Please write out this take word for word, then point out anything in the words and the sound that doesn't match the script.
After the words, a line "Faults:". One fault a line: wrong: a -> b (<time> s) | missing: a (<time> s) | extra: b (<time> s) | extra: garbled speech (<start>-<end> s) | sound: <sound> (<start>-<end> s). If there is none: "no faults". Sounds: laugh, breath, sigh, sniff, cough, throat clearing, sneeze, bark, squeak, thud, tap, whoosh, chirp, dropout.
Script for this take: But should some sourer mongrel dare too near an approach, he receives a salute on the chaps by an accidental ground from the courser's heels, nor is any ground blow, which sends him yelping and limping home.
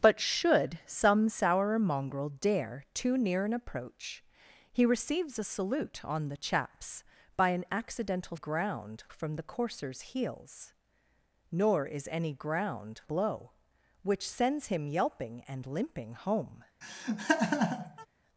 But should some sourer mongrel dare too near an approach, he receives a salute on the chaps by an accidental ground from the courser's heels, nor is any ground blow, which sends him yelping and limping home.
Faults:
sound: laugh (16.8-18.1 s)